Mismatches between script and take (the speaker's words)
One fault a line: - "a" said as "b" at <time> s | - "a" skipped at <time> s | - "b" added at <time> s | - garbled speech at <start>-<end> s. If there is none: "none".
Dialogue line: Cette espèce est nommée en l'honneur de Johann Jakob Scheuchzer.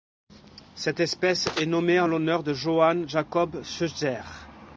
none